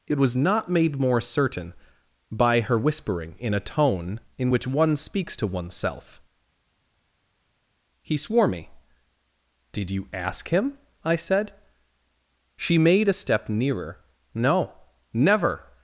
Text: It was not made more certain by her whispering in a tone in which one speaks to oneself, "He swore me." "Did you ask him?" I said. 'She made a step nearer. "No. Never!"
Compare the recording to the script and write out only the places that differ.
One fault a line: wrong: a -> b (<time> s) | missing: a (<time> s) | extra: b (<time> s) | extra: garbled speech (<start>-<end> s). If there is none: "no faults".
no faults